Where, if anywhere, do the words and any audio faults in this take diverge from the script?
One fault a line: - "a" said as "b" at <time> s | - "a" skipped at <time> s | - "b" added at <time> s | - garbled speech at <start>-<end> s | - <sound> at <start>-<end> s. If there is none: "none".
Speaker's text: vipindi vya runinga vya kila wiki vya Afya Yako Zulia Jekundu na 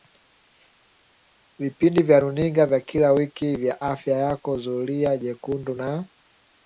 none